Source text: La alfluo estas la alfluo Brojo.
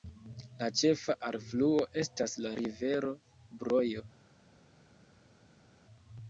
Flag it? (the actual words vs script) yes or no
yes